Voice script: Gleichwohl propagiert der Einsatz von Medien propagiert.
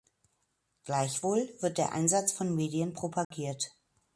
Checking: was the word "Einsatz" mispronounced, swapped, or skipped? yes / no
no